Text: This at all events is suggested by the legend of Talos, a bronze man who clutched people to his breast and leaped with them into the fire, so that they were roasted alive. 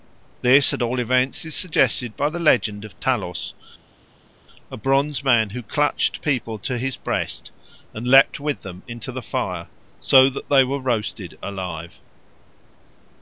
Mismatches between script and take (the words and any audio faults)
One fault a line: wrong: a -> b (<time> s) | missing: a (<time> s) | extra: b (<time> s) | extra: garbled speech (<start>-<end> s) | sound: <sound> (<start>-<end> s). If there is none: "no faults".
no faults